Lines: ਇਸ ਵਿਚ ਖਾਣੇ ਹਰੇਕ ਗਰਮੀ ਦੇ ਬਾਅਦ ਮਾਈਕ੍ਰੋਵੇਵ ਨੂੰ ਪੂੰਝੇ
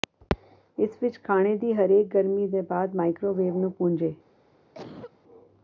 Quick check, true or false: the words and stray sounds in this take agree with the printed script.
false